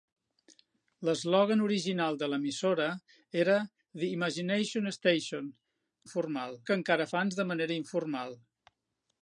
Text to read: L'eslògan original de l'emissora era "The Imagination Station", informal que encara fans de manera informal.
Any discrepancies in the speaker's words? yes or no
no